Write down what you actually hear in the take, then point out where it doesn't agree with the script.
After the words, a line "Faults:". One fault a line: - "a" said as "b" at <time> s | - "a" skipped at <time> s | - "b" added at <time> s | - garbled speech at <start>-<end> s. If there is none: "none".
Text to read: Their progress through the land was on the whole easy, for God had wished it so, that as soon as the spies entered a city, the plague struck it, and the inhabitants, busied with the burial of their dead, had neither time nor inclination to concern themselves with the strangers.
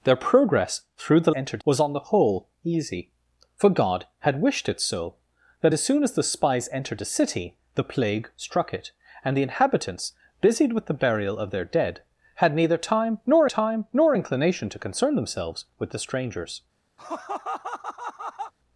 Their progress through the entered was on the whole easy, for God had wished it so, that as soon as the spies entered a city, the plague struck it, and the inhabitants, busied with the burial of their dead, had neither time nor time nor inclination to concern themselves with the strangers.
Faults:
- "land" said as "entered" at 1.3 s
- "time nor" added at 13.4 s